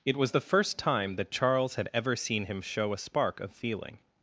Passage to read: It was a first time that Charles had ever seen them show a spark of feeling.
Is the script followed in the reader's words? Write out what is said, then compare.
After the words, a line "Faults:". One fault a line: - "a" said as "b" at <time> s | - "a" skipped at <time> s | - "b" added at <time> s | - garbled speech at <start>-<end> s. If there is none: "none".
It was the first time that Charles had ever seen him show a spark of feeling.
Faults:
- "a" said as "the" at 0.3 s
- "them" said as "him" at 2.4 s